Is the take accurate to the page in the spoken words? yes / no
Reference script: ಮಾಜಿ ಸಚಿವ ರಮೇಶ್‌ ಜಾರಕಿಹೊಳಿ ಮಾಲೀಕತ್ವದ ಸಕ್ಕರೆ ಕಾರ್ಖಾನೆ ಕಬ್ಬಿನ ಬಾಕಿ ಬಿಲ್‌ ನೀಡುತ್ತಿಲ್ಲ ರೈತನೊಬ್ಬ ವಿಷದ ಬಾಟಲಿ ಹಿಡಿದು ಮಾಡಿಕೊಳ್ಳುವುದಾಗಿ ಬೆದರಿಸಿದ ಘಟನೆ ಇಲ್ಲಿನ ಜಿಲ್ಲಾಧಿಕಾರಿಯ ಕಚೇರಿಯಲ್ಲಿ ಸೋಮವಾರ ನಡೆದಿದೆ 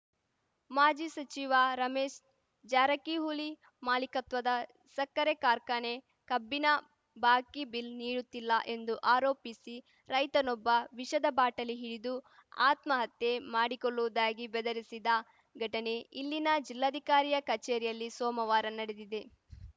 no